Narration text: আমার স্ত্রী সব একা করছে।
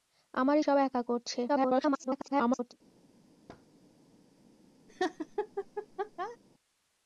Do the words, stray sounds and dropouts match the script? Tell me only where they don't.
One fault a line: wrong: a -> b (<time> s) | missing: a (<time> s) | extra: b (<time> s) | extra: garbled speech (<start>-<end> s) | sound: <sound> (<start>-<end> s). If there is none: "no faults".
missing: স্ত্রী (0.6 s)
extra: garbled speech (1.5-2.7 s)
sound: thud (3.5-3.7 s)
sound: laugh (4.9-6.4 s)